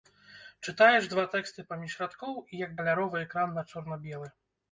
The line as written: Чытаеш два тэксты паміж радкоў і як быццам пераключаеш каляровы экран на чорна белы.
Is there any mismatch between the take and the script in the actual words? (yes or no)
yes